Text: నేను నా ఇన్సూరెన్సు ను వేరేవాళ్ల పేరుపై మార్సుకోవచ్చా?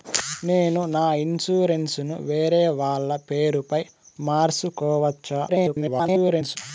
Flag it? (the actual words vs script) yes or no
yes